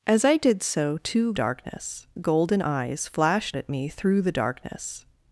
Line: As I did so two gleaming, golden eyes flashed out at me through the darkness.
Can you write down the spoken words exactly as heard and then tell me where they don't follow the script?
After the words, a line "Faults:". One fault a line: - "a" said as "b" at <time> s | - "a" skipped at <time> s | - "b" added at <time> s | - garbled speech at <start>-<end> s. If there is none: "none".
As I did so two darkness, golden eyes flashed at me through the darkness.
Faults:
- "gleaming" said as "darkness" at 1.3 s
- "out" skipped at 3.6 s